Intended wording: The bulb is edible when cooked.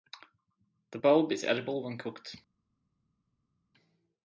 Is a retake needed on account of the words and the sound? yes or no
no